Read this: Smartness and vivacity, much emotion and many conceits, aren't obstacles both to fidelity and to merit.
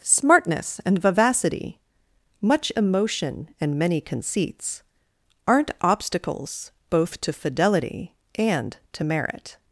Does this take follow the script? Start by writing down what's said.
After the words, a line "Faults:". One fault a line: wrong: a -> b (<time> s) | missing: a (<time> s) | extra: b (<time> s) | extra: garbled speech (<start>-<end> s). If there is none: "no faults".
Smartness and vivacity, much emotion and many conceits, aren't obstacles both to fidelity and to merit.
Faults:
no faults